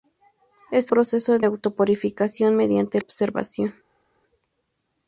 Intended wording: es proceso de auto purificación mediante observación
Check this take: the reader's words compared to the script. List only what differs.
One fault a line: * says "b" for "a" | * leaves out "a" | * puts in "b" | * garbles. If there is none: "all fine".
all fine